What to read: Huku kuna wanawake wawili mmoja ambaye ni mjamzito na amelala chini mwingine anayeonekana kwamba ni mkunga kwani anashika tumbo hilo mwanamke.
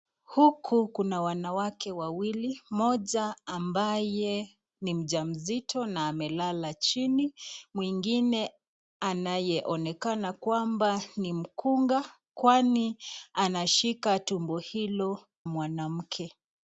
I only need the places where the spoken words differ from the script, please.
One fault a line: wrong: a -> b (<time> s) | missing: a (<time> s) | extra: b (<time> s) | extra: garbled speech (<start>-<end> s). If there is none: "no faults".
no faults